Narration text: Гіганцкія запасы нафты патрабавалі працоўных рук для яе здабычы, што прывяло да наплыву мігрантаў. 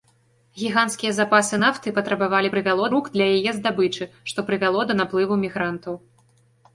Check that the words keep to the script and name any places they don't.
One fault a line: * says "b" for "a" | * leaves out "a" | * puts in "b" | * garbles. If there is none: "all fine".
* says "прывяло" for "працоўных"